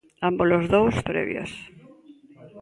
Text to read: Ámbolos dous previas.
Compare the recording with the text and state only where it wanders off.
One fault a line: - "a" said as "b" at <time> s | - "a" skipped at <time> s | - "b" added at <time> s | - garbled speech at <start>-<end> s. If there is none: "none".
none